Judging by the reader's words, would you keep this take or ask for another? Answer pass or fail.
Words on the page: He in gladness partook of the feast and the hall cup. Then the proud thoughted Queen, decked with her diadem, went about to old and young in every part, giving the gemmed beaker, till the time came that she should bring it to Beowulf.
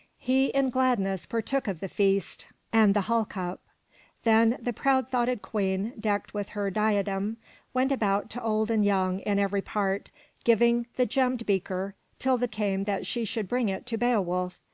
fail